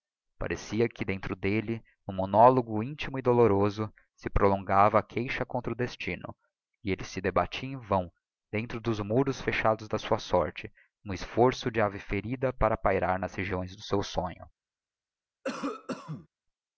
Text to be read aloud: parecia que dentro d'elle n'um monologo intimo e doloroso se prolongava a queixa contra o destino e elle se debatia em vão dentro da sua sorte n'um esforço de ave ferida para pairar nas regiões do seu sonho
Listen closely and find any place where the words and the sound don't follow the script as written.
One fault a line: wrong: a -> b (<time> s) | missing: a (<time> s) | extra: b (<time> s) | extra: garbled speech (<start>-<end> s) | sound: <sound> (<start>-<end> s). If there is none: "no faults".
extra: dos muros fechados (8.8 s)
sound: cough (15.4-16.3 s)